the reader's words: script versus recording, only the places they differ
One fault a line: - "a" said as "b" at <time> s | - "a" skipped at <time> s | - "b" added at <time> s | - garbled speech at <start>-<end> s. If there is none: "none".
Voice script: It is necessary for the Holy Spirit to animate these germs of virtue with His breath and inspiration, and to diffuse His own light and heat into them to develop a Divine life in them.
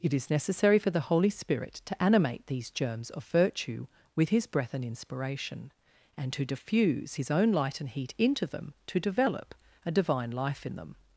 none